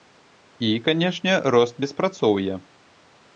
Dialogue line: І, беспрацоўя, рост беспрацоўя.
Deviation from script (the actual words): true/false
true